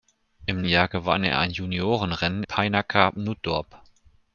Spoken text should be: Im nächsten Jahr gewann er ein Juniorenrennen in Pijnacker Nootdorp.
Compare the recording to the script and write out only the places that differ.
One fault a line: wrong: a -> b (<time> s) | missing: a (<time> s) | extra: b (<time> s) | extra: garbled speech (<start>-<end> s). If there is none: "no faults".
missing: nächsten (0.6 s)
missing: in (2.4 s)